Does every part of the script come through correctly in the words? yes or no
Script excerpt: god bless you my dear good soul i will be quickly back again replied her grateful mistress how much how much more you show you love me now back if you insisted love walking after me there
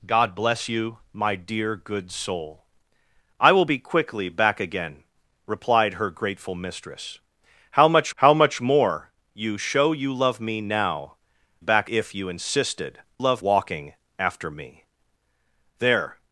yes